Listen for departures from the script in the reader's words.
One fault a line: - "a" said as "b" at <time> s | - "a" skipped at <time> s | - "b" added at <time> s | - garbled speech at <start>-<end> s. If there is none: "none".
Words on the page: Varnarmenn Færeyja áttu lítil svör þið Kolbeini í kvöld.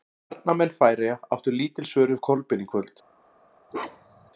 - "þið" said as "við" at 2.1 s